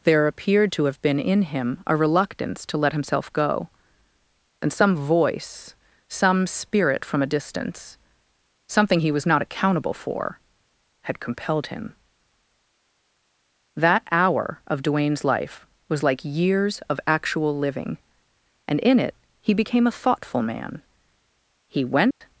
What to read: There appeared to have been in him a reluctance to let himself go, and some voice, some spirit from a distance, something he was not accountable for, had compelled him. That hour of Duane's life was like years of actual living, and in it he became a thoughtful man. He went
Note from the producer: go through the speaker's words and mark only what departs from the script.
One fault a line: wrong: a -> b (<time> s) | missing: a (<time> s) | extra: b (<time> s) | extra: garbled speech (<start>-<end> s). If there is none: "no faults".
no faults